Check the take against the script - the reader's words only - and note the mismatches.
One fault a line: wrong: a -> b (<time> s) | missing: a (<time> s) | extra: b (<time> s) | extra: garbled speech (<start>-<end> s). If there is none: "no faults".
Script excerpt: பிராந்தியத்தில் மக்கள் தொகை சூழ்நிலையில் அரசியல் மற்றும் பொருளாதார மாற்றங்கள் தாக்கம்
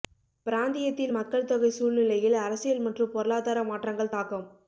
no faults